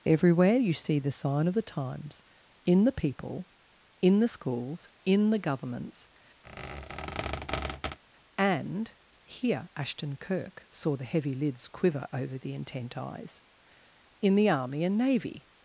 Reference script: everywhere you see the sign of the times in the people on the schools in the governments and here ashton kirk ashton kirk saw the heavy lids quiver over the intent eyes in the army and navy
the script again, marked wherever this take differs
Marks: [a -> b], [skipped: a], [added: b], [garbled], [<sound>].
everywhere you see the sign of the times in the people [on -> in] the schools in the governments [squeak] and here ashton kirk [skipped: ashton kirk] saw the heavy lids quiver over the intent eyes in the army and navy